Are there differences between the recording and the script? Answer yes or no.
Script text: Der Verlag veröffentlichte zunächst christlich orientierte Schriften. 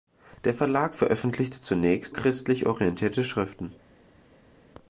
no